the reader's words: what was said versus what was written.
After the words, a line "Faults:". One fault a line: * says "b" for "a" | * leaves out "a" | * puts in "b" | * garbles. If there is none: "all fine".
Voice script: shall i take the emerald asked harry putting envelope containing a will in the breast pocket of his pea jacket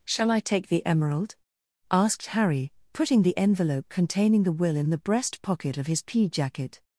shall i take the emerald asked harry putting the envelope containing the will in the breast pocket of his pea jacket
Faults:
* puts in "the"
* says "the" for "a"